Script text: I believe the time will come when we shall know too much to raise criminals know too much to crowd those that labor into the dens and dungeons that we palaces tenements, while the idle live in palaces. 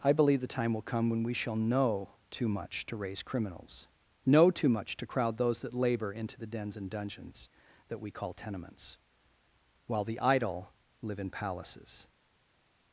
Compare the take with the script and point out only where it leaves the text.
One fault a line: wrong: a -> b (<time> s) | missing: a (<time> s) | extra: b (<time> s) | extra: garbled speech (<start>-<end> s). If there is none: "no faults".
wrong: palaces -> call (8.1 s)